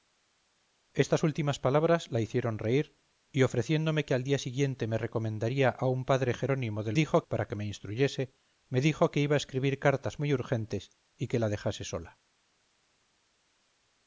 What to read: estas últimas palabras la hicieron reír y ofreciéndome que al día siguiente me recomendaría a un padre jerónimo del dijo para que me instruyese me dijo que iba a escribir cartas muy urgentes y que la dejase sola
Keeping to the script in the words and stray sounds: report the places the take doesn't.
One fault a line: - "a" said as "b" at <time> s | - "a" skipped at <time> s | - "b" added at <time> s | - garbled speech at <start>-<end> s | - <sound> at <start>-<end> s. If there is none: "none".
none